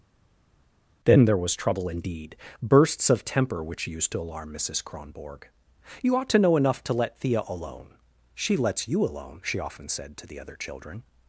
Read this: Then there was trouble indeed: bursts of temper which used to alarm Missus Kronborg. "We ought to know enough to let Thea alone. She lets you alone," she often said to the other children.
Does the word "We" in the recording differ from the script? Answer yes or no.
yes